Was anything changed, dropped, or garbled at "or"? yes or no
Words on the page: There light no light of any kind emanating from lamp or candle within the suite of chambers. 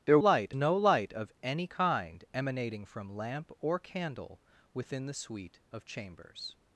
no